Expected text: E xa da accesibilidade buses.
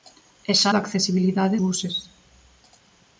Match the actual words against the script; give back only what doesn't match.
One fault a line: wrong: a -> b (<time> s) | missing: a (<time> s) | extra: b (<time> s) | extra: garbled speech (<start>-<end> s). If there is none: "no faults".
no faults